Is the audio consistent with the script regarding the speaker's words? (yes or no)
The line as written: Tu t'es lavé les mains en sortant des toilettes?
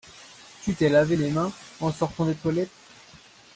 yes